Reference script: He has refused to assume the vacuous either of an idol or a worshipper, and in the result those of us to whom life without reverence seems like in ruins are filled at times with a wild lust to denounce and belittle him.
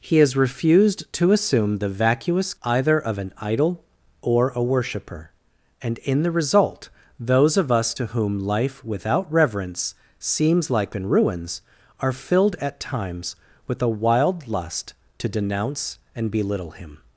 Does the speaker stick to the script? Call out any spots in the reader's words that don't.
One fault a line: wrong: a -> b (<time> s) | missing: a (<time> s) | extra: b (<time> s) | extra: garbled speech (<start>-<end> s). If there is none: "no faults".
no faults